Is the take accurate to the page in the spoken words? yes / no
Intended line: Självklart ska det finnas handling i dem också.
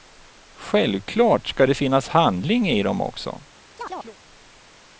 yes